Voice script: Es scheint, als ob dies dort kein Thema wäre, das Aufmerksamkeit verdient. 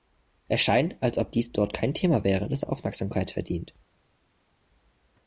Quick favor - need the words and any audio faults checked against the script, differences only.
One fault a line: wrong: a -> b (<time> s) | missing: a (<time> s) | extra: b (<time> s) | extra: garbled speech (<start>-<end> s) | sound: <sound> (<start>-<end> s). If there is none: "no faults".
no faults